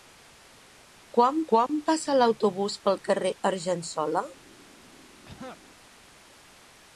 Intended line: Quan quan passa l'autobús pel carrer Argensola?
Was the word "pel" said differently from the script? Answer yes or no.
no